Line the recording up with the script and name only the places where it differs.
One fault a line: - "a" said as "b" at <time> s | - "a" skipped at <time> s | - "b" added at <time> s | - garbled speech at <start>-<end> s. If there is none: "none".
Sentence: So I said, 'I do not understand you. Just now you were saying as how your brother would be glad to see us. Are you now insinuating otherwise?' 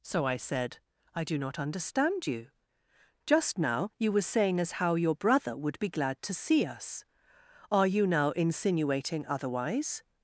none